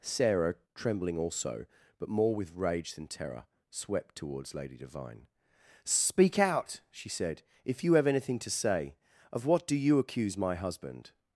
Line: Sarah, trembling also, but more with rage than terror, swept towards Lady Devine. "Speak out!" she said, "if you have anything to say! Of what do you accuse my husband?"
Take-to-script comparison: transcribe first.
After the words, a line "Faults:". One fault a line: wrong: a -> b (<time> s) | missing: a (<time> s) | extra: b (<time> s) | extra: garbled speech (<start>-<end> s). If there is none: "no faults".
Sarah, trembling also, but more with rage than terror, swept towards Lady Devine. "Speak out!" she said, "if you have anything to say! Of what do you accuse my husband?"
Faults:
no faults